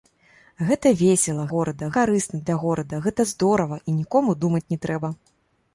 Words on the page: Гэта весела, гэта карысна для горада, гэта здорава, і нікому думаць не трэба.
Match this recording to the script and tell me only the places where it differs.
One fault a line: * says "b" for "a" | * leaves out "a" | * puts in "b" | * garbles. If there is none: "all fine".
* says "горада" for "гэта"